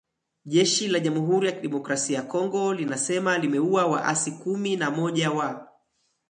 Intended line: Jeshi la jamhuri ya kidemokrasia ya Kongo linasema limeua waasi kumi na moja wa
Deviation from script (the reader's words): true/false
false